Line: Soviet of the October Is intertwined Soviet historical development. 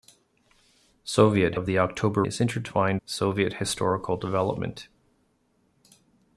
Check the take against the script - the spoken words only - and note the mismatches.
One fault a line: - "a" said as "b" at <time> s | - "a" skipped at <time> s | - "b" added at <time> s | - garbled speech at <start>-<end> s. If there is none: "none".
none